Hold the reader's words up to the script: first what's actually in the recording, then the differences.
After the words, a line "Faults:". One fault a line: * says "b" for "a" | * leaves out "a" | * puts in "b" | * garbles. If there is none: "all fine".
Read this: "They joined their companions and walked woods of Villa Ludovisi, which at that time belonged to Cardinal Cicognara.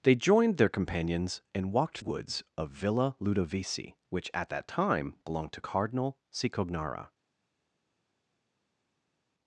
"They joined their companions and walked woods of Villa Ludovisi, which at that time belonged to Cardinal Cicognara.
Faults:
all fine